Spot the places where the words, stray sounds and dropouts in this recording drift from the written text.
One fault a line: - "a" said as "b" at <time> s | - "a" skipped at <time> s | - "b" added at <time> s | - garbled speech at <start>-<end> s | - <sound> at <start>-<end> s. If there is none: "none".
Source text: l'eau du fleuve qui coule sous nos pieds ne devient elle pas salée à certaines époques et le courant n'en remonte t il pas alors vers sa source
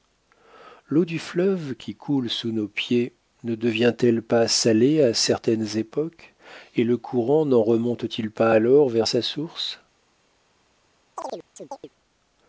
- chirp at 11.2-11.9 s